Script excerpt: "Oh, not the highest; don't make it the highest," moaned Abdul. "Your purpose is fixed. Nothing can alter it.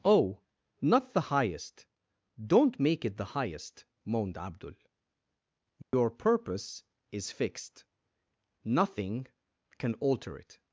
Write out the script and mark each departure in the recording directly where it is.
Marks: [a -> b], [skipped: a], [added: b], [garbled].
"Oh, not the highest; don't make it the highest," moaned Abdul. "Your purpose is fixed. Nothing can alter it.